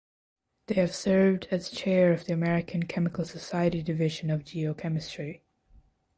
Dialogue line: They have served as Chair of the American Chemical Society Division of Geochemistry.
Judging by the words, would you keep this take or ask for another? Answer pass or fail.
pass